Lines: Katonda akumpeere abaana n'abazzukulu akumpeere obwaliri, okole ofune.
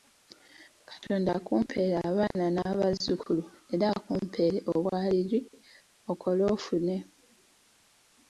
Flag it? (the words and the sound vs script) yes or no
yes